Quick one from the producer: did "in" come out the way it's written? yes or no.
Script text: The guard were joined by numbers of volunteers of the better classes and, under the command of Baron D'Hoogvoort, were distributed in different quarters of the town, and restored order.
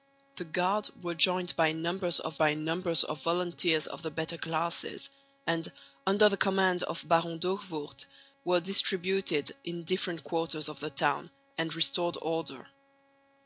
yes